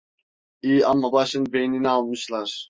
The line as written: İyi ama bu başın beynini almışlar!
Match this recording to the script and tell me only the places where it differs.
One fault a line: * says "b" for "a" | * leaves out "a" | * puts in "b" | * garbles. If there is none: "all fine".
* leaves out "bu"